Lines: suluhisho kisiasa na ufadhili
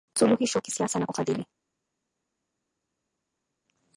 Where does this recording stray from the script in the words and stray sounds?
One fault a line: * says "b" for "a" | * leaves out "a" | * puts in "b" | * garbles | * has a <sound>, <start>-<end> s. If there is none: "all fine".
all fine